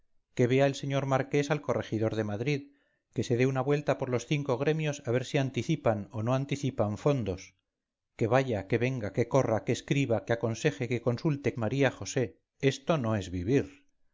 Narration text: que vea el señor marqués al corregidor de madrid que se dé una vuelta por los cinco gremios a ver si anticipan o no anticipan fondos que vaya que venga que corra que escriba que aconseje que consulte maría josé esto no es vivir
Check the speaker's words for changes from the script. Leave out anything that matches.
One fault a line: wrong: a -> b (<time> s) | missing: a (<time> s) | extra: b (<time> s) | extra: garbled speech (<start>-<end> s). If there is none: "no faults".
no faults